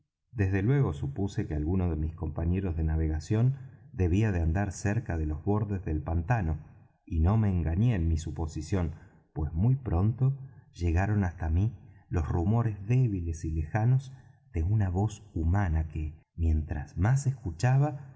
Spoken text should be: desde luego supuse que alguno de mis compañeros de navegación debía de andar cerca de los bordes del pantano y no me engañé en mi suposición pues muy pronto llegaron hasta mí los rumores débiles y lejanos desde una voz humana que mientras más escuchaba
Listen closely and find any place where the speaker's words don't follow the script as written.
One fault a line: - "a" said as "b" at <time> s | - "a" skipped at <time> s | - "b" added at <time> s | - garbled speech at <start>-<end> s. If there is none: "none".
- "desde" said as "de" at 14.5 s